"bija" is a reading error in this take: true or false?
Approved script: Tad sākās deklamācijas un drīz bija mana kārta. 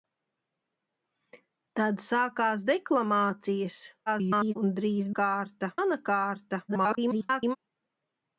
true